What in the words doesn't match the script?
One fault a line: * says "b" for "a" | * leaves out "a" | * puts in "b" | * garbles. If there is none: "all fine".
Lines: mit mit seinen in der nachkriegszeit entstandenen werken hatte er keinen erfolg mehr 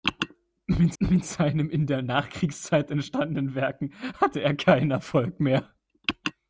all fine